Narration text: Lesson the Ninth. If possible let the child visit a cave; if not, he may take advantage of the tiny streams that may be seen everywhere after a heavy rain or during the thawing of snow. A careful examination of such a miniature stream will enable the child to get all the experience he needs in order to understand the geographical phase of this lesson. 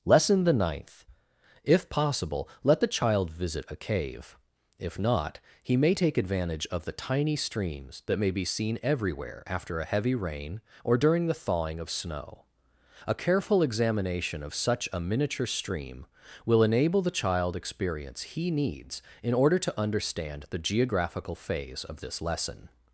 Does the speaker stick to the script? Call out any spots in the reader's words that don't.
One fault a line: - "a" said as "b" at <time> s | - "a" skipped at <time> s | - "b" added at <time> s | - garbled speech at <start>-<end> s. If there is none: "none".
- "to get all the" skipped at 17.5 s